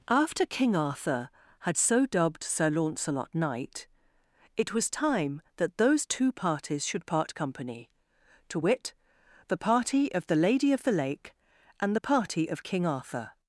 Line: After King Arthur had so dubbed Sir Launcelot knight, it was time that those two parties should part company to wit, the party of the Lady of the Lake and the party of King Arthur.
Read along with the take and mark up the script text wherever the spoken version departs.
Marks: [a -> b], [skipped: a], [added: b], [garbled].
After King Arthur had so dubbed Sir Launcelot knight, it was time that those two parties should part company to wit, the party of the Lady of the Lake and the party of King Arthur.